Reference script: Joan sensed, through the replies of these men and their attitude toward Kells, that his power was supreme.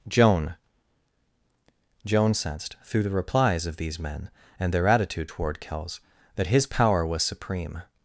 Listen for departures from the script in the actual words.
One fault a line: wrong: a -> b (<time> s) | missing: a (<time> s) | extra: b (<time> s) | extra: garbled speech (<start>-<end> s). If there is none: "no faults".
extra: joan (2.0 s)